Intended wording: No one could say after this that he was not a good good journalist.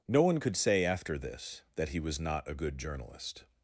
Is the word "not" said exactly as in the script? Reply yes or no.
yes